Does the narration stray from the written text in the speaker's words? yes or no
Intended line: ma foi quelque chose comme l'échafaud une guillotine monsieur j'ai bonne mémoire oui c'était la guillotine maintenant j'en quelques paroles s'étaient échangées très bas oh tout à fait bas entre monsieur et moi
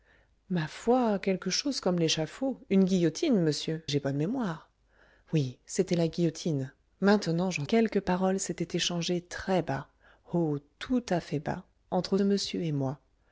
no